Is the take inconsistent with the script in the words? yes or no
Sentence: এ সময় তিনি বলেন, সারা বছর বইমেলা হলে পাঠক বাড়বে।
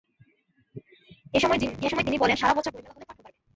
no